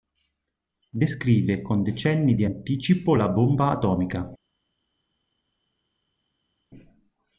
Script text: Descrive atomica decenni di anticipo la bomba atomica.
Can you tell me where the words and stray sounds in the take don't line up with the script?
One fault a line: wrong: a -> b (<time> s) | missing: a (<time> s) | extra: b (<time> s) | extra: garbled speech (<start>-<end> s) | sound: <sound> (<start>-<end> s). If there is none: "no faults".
wrong: atomica -> con (1.6 s)